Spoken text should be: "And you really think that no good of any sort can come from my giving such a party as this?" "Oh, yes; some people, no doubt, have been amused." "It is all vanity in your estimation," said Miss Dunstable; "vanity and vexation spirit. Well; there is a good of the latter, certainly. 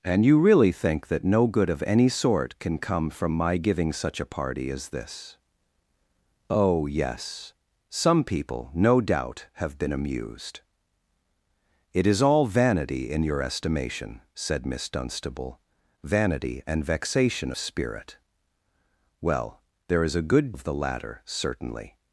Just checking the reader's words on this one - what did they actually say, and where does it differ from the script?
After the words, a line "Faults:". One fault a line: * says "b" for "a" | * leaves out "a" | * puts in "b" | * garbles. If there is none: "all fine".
"And you really think that no good of any sort can come from my giving such a party as this?" "Oh, yes; some people, no doubt, have been amused." "It is all vanity in your estimation," said Miss Dunstable; "vanity and vexation spirit. Well; there is a good of the latter, certainly.
Faults:
all fine